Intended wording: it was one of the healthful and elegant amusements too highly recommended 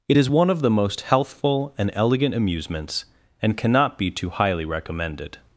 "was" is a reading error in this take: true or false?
true